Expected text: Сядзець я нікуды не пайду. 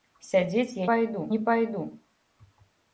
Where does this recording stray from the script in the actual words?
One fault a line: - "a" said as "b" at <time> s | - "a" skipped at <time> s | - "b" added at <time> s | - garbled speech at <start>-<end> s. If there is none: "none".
- "нікуды" said as "пайду" at 0.9 s